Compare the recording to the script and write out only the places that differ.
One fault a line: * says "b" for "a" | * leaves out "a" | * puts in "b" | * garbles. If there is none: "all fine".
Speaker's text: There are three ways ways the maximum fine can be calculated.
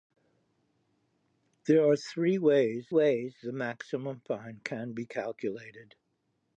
all fine